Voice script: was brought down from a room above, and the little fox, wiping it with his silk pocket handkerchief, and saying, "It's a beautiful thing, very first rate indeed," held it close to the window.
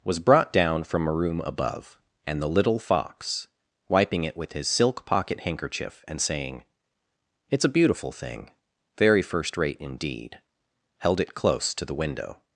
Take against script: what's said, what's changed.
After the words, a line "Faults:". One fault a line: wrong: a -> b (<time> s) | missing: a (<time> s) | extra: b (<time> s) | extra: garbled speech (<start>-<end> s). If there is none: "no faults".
was brought down from a room above, and the little fox, wiping it with his silk pocket handkerchief, and saying, "It's a beautiful thing, very first rate indeed," held it close to the window.
Faults:
no faults